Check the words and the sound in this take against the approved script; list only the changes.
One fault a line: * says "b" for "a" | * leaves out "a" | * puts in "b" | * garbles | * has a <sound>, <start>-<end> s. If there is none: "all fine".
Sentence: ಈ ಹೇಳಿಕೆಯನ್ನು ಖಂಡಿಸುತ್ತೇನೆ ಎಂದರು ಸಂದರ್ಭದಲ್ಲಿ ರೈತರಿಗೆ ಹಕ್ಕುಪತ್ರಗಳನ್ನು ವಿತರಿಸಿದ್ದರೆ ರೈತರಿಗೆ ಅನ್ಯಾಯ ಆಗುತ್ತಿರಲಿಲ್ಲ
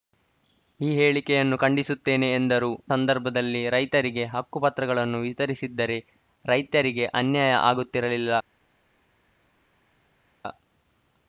all fine